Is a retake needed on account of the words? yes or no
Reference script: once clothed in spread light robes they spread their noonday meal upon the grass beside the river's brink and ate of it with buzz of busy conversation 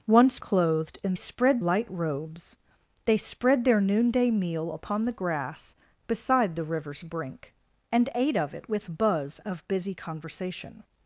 no